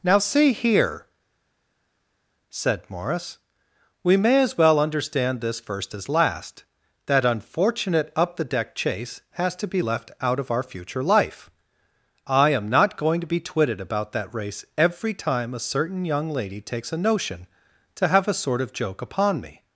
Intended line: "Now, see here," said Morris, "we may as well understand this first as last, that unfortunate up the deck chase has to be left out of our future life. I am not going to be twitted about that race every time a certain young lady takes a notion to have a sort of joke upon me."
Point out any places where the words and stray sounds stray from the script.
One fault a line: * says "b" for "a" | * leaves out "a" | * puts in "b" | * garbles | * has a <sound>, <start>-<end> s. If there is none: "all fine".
all fine